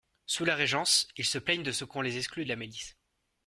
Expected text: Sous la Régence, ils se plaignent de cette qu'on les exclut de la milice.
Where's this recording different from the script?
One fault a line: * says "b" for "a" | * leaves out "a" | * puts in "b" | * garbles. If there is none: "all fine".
* says "ce" for "cette"